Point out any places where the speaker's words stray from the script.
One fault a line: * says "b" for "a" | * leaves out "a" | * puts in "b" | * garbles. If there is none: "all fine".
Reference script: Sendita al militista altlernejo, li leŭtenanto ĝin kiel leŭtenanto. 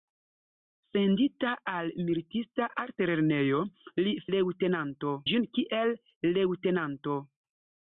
all fine